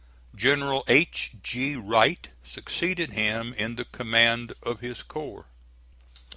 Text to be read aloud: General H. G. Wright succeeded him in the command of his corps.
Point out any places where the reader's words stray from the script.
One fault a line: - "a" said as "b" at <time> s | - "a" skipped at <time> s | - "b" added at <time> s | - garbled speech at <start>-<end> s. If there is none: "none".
none